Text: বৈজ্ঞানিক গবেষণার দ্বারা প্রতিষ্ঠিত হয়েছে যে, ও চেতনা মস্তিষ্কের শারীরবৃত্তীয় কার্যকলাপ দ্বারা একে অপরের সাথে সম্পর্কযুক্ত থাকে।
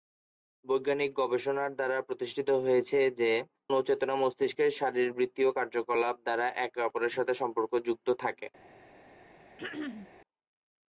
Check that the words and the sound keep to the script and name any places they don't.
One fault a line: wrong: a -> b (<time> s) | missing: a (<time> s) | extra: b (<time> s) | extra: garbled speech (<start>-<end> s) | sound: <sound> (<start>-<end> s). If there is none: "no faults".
sound: throat clearing (9.6-10.1 s)